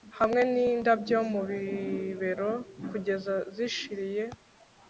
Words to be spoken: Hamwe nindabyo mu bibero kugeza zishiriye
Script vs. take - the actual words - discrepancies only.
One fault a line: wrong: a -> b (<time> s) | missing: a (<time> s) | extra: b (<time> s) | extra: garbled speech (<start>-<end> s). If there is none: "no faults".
no faults